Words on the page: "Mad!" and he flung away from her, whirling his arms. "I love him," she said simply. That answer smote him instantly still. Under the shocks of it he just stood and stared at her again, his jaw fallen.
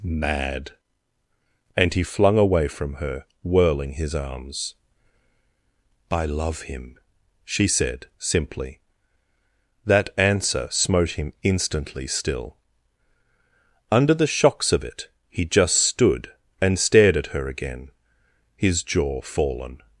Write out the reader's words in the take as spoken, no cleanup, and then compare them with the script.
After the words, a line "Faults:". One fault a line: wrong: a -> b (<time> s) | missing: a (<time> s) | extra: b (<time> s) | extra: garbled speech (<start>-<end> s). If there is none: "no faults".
"Mad!" and he flung away from her, whirling his arms. "I love him," she said simply. That answer smote him instantly still. Under the shocks of it he just stood and stared at her again, his jaw fallen.
Faults:
no faults